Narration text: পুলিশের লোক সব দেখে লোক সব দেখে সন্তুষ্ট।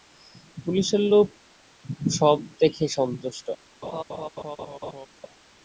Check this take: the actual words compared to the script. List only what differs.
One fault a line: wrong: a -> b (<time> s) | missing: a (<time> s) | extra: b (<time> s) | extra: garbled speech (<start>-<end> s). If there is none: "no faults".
missing: লোক সব দেখে (2.9 s)